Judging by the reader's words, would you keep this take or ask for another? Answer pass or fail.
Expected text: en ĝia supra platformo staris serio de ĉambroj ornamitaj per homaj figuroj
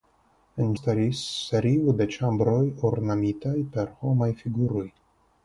fail